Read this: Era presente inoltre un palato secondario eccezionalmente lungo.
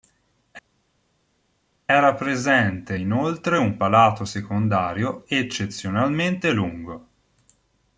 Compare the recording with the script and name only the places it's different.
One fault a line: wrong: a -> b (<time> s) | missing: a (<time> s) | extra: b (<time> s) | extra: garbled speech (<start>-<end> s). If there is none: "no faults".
no faults